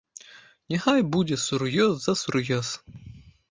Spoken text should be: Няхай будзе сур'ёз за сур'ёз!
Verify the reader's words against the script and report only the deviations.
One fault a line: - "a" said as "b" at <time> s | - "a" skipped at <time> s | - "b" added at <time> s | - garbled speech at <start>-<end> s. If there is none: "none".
none